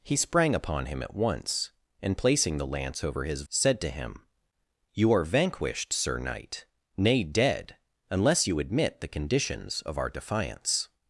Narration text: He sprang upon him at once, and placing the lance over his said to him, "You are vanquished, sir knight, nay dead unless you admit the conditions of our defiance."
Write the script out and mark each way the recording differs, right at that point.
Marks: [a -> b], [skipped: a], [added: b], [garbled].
He sprang upon him at once, and placing the lance over his said to him, "You are vanquished, sir knight, nay dead unless you admit the conditions of our defiance."